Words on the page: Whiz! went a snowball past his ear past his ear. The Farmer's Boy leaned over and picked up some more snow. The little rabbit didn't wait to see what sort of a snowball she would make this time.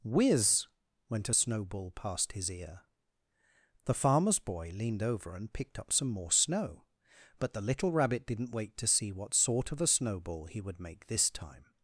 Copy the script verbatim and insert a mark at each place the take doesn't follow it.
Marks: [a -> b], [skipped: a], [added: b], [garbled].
Whiz! went a snowball past his ear [skipped: past his ear.] The Farmer's Boy leaned over and picked up some more snow. [added: But] The little rabbit didn't wait to see what sort of a snowball [she -> he] would make this time.